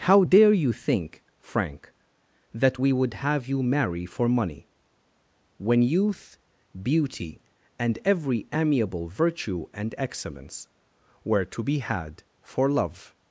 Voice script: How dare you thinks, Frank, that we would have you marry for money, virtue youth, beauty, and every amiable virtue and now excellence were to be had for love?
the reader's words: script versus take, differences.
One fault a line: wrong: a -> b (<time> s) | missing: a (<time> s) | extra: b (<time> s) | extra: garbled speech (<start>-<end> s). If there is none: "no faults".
wrong: thinks -> think (0.7 s)
wrong: virtue -> when (5.6 s)
missing: now (9.9 s)